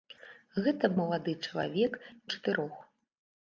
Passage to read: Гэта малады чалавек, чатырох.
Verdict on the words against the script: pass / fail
pass